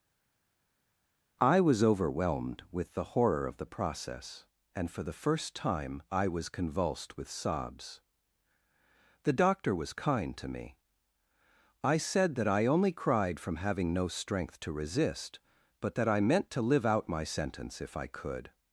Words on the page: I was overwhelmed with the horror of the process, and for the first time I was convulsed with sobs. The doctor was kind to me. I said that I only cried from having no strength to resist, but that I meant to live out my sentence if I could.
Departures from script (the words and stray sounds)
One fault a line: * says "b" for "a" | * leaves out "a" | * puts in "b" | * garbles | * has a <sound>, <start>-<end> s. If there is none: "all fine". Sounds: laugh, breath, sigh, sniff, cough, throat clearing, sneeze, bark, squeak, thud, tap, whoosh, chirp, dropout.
all fine